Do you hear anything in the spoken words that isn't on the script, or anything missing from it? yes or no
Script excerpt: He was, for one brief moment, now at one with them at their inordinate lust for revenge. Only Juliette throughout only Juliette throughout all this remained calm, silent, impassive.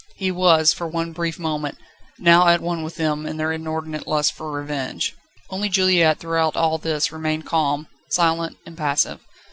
yes